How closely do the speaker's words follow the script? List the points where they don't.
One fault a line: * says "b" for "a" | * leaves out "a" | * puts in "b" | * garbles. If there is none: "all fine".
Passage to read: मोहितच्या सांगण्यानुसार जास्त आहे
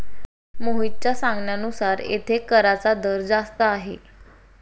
* puts in "येथे कराचा दर"